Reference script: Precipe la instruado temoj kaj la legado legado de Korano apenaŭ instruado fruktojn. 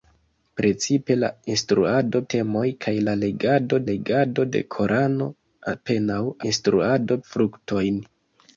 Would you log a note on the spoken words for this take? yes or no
no